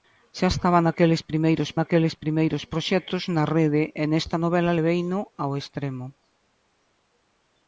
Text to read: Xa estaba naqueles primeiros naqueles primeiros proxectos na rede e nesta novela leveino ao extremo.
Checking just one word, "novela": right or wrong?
right